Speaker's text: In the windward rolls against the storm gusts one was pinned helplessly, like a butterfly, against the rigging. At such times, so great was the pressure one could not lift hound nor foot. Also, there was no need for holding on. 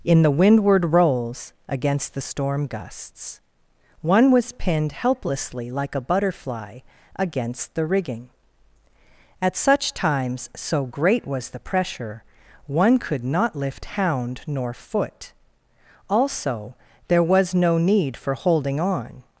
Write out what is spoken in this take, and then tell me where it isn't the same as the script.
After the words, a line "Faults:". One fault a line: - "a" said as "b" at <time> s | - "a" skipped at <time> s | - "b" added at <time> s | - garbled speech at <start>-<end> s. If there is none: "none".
In the windward rolls against the storm gusts one was pinned helplessly, like a butterfly, against the rigging. At such times, so great was the pressure one could not lift hound nor foot. Also, there was no need for holding on.
Faults:
none